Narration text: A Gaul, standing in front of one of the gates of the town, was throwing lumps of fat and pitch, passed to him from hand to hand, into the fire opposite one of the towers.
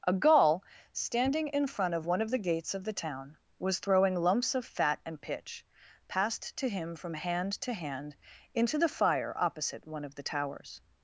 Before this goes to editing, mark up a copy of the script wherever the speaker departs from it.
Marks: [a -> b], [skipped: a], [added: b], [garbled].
A Gaul, standing in front of one of the gates of the town, was throwing lumps of fat and pitch, passed to him from hand to hand, into the fire opposite one of the towers.